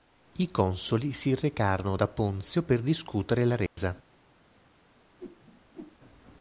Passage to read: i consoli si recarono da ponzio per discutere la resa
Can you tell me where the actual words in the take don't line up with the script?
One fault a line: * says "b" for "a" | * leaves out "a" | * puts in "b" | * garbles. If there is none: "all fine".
all fine